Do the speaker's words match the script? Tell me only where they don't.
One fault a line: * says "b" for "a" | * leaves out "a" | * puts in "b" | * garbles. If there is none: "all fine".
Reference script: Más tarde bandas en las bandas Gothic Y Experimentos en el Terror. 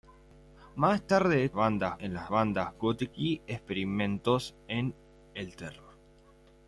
all fine